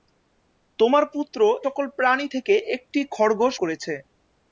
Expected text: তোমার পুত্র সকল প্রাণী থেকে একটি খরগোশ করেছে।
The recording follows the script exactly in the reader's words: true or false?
true